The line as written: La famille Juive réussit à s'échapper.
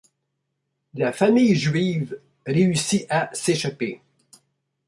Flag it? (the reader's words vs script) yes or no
no